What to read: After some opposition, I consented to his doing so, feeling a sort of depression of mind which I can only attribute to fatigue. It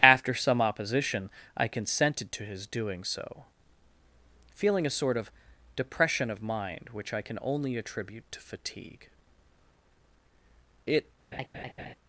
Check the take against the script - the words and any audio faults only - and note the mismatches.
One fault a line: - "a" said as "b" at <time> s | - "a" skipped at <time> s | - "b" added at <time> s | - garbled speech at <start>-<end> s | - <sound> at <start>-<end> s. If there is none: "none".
- laugh at 11.3-11.9 s